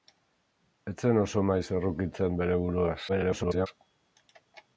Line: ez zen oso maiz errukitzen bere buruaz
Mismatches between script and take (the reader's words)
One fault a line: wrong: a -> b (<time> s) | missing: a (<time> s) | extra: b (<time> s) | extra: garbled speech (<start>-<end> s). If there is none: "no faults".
extra: garbled speech (3.1-3.7 s)